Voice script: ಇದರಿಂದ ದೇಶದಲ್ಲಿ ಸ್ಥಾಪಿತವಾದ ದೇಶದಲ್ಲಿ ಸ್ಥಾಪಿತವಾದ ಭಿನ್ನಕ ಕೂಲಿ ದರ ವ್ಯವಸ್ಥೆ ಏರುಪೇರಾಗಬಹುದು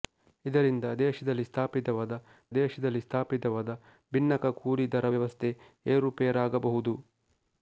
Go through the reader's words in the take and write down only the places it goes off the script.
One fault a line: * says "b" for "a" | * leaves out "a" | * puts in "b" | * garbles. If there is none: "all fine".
all fine